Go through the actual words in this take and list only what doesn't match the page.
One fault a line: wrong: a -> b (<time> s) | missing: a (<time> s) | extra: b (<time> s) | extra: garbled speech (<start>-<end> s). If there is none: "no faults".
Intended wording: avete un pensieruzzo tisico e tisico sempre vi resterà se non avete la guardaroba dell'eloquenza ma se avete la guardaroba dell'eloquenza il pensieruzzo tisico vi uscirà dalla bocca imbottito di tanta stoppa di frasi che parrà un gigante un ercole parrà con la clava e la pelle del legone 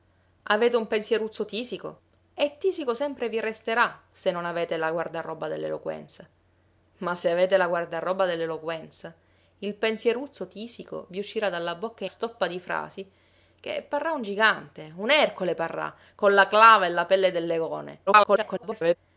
missing: imbottito di tanta (12.1 s)
extra: garbled speech (18.1-19.0 s)